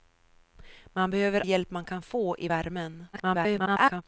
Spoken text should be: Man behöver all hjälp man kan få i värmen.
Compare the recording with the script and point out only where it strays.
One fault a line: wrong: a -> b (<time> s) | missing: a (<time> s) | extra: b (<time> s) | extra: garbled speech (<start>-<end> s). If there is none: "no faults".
missing: all (1.4 s)
extra: garbled speech (3.1-4.0 s)